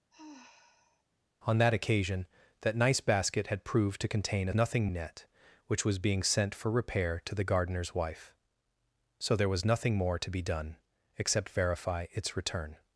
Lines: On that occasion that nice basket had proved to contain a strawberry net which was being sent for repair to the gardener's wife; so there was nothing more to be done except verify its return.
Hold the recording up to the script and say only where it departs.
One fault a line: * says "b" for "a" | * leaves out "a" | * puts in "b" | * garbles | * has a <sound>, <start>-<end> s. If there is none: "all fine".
* has a sigh, 0.1-1.0 s
* says "nothing" for "strawberry"